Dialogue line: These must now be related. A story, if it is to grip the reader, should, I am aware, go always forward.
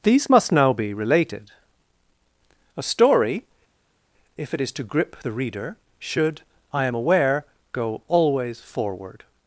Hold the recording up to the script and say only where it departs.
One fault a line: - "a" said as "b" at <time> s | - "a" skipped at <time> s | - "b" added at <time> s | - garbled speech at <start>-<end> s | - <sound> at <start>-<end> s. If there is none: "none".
none